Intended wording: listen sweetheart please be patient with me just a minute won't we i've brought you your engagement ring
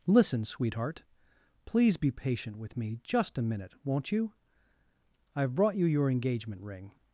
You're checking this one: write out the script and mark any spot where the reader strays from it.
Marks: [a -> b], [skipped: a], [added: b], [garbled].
listen sweetheart please be patient with me just a minute won't [we -> you] i've brought you your engagement ring